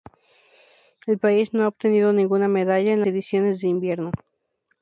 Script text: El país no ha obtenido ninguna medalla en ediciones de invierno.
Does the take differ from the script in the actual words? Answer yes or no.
no